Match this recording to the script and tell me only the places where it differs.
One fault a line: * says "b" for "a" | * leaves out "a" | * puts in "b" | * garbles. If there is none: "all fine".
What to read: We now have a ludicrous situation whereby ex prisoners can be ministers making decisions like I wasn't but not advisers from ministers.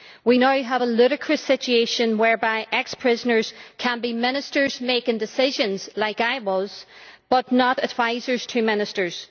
* says "was" for "wasn't"
* says "to" for "from"